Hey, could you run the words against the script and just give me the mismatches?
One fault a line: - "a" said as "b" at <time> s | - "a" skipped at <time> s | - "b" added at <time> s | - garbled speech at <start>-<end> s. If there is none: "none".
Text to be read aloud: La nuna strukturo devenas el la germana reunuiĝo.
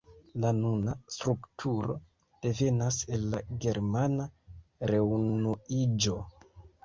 none